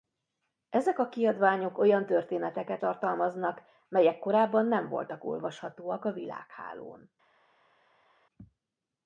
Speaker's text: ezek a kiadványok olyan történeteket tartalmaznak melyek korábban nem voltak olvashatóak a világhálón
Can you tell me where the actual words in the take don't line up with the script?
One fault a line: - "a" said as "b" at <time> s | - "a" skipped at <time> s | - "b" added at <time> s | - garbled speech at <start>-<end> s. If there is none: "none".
none